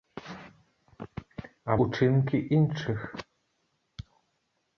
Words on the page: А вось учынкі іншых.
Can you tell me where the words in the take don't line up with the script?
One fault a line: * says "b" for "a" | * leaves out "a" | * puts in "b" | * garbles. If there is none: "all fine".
* leaves out "вось"